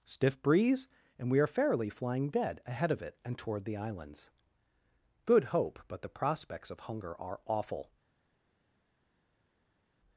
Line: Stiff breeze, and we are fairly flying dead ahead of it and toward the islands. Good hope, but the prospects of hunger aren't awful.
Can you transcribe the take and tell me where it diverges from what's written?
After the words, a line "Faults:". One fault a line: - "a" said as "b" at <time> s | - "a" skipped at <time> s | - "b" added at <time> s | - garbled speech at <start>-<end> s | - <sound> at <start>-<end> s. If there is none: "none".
Stiff breeze, and we are fairly flying dead ahead of it and toward the islands. Good hope, but the prospects of hunger are awful.
Faults:
- "aren't" said as "are" at 7.2 s